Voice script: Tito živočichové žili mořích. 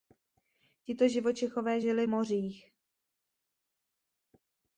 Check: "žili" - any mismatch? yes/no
no